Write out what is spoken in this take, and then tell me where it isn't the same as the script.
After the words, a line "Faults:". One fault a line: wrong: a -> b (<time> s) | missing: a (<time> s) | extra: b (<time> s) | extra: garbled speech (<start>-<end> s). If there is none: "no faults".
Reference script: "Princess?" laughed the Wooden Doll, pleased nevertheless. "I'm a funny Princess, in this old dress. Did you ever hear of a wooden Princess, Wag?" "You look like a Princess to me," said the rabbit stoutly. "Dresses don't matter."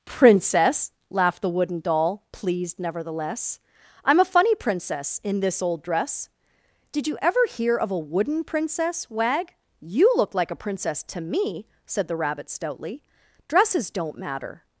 "Princess?" laughed the Wooden Doll, pleased nevertheless. "I'm a funny Princess, in this old dress. Did you ever hear of a wooden Princess, Wag?" "You look like a Princess to me," said the rabbit stoutly. "Dresses don't matter."
Faults:
no faults